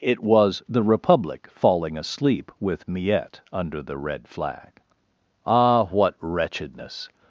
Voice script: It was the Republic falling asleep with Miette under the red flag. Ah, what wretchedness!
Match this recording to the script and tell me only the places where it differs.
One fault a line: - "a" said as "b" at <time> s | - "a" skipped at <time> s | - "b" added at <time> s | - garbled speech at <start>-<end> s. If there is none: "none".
none